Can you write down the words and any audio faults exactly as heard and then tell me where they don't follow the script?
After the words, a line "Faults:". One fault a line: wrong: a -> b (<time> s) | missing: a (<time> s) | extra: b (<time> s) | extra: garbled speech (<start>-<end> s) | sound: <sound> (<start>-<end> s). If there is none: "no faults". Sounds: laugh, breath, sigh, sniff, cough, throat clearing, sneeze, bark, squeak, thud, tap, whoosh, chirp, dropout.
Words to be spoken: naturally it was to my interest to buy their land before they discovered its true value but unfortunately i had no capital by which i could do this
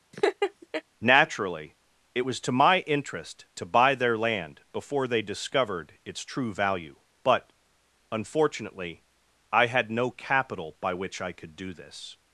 naturally it was to my interest to buy their land before they discovered its true value but unfortunately i had no capital by which i could do this
Faults:
sound: laugh (0.1-0.8 s)